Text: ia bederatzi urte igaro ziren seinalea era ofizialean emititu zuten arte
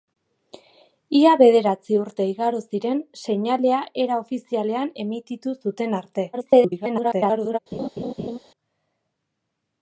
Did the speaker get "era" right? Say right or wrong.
right